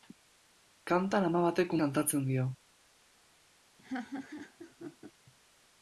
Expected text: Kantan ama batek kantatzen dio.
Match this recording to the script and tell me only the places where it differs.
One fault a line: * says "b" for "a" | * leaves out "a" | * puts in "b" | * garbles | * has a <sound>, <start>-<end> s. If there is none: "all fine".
* has a laugh, 3.8-5.1 s